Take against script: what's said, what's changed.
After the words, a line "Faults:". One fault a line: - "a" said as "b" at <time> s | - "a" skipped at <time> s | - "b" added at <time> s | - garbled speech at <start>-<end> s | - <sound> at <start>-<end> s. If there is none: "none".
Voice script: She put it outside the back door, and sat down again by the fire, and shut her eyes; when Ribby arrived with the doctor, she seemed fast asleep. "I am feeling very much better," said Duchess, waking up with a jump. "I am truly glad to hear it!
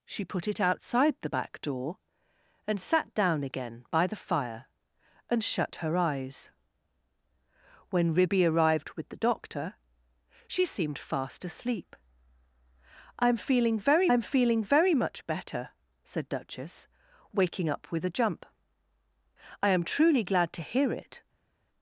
She put it outside the back door, and sat down again by the fire, and shut her eyes; when Ribby arrived with the doctor, she seemed fast asleep. "I am feeling very am feeling very much better," said Duchess, waking up with a jump. "I am truly glad to hear it!
Faults:
- "am feeling very" added at 14.1 s